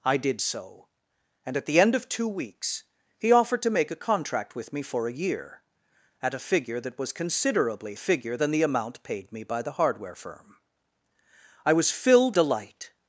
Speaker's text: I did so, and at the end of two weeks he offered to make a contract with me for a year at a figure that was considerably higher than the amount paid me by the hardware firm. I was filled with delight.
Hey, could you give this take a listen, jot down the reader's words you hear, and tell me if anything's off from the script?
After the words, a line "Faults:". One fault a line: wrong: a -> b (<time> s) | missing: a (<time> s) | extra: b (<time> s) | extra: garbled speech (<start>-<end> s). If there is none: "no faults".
I did so, and at the end of two weeks he offered to make a contract with me for a year at a figure that was considerably figure than the amount paid me by the hardware firm. I was filled delight.
Faults:
wrong: higher -> figure (8.0 s)
missing: with (12.4 s)